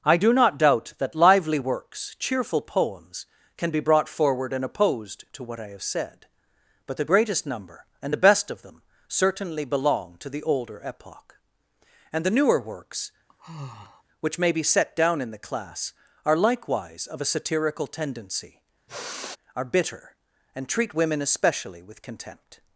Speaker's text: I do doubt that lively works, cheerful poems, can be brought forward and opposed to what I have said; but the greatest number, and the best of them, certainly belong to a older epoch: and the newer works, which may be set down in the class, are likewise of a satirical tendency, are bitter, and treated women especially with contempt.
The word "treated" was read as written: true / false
false